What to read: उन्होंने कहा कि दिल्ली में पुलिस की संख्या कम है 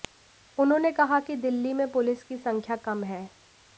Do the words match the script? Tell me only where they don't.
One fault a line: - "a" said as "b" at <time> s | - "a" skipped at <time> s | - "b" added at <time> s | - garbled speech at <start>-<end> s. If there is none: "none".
none